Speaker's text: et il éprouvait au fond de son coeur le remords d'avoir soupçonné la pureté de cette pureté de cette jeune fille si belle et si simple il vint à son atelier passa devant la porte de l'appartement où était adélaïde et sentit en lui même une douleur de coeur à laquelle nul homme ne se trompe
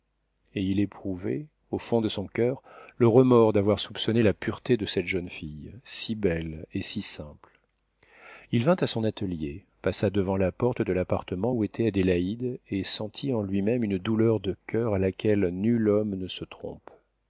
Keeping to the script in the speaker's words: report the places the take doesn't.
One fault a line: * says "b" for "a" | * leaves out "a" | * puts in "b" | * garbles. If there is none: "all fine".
* leaves out "pureté de cette"